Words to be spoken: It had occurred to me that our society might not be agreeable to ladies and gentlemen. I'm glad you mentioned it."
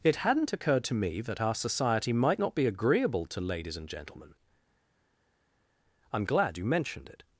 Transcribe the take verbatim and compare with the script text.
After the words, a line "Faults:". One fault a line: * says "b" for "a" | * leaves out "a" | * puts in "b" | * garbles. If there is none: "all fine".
It hadn't occurred to me that our society might not be agreeable to ladies and gentlemen. I'm glad you mentioned it."
Faults:
* says "hadn't" for "had"